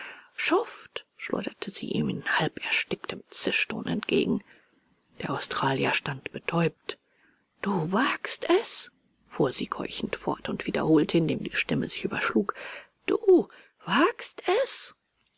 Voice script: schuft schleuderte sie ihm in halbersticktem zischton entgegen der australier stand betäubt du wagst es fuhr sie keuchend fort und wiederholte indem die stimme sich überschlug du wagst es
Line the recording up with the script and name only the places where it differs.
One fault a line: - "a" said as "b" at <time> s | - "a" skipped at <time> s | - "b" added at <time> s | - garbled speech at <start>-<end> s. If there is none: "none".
none